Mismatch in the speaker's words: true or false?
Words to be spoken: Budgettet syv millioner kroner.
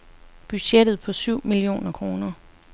true